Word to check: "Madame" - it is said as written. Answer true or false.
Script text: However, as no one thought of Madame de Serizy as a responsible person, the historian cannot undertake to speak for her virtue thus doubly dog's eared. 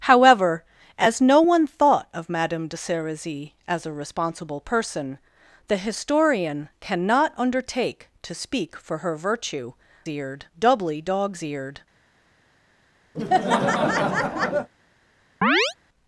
true